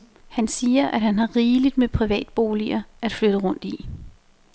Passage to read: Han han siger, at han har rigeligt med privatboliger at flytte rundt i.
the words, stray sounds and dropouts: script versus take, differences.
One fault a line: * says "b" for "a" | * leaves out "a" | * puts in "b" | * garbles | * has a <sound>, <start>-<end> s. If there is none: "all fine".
* leaves out "han"